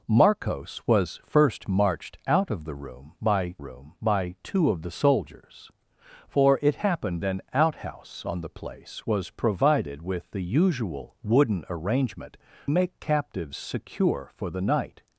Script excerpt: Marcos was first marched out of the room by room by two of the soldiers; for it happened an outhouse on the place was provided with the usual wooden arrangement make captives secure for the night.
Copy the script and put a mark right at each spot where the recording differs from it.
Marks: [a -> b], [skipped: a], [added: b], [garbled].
Marcos was first marched out of the room by room by two of the soldiers; for it happened an outhouse on the place was provided with the usual wooden arrangement make captives secure for the night.